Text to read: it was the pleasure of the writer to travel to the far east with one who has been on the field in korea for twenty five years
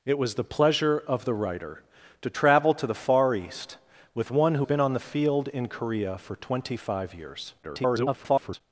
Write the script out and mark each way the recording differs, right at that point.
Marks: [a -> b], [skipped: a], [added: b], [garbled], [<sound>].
it was the pleasure of the writer to travel to the far east with one who [skipped: has] been on the field in korea for twenty five years [garbled]